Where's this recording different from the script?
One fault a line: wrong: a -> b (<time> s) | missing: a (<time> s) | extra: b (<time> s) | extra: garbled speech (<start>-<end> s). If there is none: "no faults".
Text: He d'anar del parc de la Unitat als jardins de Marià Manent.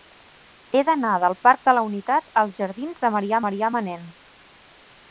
extra: Marià (3.5 s)